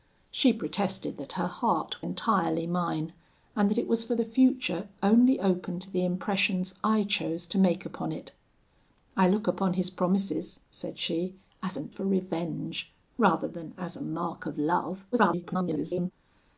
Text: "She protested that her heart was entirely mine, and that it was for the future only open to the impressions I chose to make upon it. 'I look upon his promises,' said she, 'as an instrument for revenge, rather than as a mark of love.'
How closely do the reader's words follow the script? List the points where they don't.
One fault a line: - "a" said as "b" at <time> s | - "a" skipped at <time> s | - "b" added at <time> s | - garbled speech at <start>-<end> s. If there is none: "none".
- "was" skipped at 2.0 s
- "instrument" skipped at 11.9 s
- garbled speech at 15.1-16.1 s